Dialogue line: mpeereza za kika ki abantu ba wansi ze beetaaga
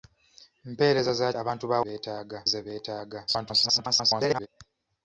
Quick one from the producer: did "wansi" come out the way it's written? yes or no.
no